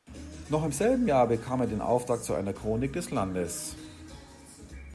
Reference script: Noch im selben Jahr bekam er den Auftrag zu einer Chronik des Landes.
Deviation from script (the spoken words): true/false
false